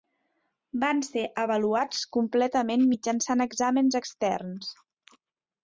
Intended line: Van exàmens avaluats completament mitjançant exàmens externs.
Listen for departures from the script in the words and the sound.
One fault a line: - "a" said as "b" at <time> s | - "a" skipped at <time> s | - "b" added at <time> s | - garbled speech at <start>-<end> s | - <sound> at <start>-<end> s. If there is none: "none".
- "exàmens" said as "ser" at 1.1 s